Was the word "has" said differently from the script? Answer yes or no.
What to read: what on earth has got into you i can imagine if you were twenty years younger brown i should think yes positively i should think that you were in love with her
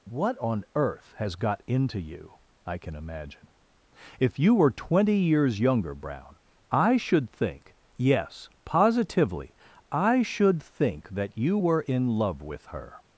no